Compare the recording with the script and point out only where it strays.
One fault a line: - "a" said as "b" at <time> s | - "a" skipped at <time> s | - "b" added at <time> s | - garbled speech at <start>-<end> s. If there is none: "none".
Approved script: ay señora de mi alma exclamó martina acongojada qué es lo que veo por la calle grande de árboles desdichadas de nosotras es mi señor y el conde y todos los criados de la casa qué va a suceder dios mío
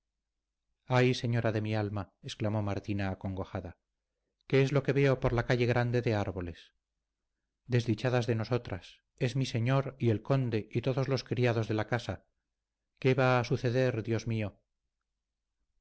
none